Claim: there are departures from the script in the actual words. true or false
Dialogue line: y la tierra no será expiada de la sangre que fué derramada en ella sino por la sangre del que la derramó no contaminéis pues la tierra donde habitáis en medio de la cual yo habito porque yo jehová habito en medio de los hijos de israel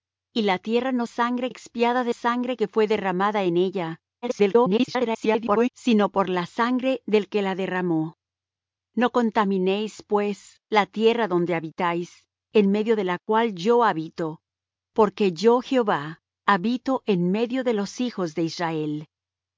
true